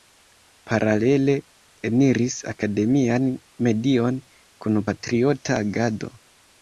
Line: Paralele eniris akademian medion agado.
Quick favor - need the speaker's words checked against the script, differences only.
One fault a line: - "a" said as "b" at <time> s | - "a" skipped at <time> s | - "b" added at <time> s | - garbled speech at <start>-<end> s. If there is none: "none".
- "kun patriota" added at 4.7 s